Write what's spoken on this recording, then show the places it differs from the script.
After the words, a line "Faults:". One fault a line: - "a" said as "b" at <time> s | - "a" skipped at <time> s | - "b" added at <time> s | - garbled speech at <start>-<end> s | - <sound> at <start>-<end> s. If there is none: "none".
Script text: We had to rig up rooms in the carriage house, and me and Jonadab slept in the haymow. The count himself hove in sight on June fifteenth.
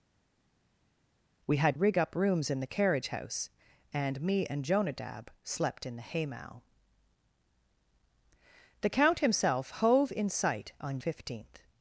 We had rig up rooms in the carriage house, and me and Jonadab slept in the haymow. The count himself hove in sight on Fifteenth.
Faults:
- "to" skipped at 1.8 s
- "June" skipped at 11.0 s